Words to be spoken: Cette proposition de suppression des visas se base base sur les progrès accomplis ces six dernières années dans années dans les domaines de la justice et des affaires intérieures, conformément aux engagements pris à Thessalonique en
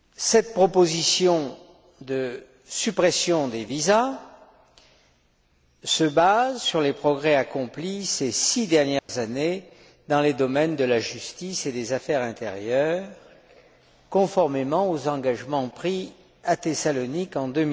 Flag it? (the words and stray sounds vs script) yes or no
yes